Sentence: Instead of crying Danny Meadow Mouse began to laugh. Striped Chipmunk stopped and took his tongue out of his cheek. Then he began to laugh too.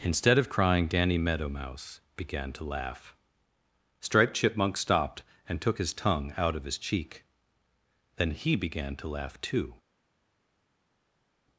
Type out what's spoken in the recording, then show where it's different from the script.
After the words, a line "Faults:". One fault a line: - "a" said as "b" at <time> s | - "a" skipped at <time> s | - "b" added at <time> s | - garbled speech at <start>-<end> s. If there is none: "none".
Instead of crying Danny Meadow Mouse began to laugh. Striped Chipmunk stopped and took his tongue out of his cheek. Then he began to laugh too.
Faults:
none